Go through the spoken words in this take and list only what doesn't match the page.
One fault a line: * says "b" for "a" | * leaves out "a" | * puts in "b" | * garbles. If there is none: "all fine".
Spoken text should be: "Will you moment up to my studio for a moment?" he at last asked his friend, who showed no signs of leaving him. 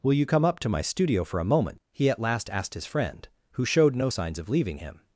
* says "come" for "moment"